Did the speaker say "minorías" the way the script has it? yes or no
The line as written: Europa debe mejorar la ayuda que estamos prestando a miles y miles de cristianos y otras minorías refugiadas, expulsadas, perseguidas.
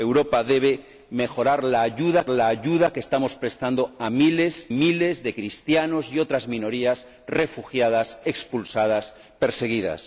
yes